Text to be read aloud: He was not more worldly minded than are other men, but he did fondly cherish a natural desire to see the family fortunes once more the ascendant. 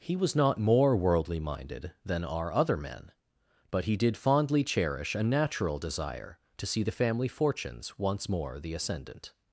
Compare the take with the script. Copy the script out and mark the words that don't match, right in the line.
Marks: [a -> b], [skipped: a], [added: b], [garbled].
He was not more worldly minded than are other men, but he did fondly cherish a natural desire to see the family fortunes once more the ascendant.